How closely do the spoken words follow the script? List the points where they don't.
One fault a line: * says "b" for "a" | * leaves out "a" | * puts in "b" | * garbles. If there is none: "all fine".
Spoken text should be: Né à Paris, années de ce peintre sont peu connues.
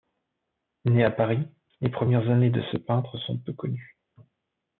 * puts in "les premières"